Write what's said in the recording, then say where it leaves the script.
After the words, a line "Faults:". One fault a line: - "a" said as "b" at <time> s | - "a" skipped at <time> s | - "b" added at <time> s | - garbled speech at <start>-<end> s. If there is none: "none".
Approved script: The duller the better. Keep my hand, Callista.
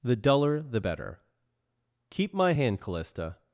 The duller the better. Keep my hand, Callista.
Faults:
none